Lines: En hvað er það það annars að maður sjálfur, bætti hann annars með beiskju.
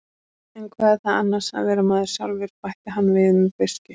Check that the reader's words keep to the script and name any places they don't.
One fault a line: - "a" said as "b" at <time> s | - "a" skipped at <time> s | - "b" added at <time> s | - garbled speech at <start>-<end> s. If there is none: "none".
- "það" skipped at 1.2 s
- "vera" added at 1.7 s
- "annars" said as "við" at 3.2 s